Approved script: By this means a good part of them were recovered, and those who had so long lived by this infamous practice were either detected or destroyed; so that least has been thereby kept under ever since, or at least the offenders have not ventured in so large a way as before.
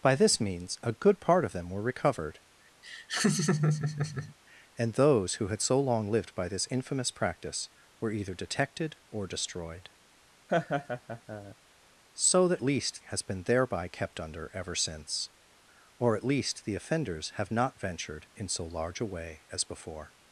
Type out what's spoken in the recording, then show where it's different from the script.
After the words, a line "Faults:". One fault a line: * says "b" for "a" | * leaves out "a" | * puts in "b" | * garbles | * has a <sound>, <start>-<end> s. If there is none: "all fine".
By this means a good part of them were recovered, and those who had so long lived by this infamous practice were either detected or destroyed; so that least has been thereby kept under ever since, or at least the offenders have not ventured in so large a way as before.
Faults:
* has a laugh, 2.8-4.3 s
* has a laugh, 10.5-11.6 s